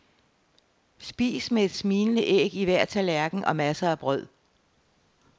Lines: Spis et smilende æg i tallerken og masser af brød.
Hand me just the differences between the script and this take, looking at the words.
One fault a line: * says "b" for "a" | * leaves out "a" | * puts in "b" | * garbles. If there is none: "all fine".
* puts in "med"
* puts in "hver"